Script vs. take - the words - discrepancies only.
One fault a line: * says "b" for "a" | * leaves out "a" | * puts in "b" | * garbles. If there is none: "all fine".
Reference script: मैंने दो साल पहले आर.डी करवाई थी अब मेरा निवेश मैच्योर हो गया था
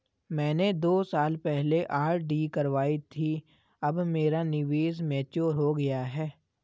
* says "है" for "था"